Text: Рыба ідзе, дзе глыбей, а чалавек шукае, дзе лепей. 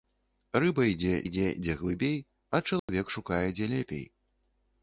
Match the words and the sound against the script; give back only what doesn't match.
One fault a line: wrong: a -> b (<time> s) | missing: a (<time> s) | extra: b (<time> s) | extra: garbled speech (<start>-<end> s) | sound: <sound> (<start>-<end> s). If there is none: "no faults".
extra: ідзе (1.2 s)
sound: dropout (2.8-2.9 s)